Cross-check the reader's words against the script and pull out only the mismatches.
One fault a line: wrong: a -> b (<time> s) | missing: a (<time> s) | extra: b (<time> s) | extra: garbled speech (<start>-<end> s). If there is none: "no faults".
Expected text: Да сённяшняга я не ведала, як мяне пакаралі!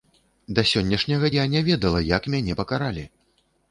no faults